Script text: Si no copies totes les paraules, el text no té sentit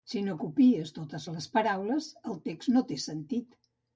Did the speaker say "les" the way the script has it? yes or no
yes